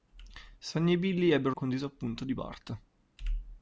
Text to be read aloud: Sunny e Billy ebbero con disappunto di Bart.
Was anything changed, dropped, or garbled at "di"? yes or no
no